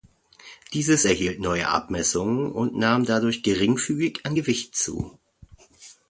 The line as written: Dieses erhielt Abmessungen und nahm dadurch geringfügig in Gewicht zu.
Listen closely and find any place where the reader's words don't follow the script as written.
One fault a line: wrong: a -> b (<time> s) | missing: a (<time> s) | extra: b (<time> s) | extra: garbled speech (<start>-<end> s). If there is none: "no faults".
extra: neue (1.4 s)
wrong: in -> an (4.2 s)